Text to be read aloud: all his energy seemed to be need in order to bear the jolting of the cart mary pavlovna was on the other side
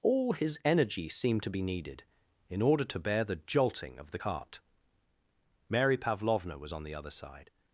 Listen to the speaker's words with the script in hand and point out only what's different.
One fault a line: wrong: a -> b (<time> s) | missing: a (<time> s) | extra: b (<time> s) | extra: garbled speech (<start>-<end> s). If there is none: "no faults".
wrong: need -> needed (1.6 s)